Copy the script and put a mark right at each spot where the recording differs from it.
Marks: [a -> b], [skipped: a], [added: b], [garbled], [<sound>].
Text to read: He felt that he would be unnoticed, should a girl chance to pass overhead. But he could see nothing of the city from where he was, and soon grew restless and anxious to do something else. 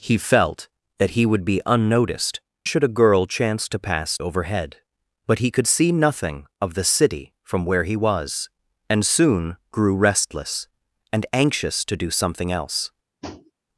He felt that he would be unnoticed, should a girl chance to pass overhead. But he could see nothing of the city from where he was, and soon grew restless and anxious to do something else. [tap]